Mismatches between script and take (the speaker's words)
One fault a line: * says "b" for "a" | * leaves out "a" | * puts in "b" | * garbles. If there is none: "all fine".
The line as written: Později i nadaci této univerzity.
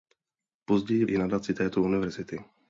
all fine